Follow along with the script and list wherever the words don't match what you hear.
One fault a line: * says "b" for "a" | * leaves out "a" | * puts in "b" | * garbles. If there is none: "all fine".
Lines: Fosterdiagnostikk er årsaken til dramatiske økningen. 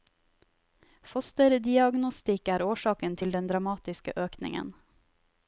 * puts in "den"